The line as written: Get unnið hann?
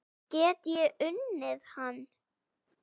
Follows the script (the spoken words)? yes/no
no